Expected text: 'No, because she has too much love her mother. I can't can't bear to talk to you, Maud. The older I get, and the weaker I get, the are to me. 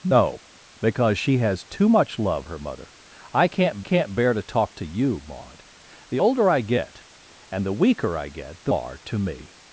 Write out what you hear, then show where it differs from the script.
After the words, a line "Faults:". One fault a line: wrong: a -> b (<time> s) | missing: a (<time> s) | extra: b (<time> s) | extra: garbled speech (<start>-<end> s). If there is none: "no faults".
'No, because she has too much love her mother. I can't can't bear to talk to you, Maud. The older I get, and the weaker I get, the are to me.
Faults:
no faults